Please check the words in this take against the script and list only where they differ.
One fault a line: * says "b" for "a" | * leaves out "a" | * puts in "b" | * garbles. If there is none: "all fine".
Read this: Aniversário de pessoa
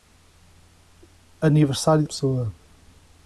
all fine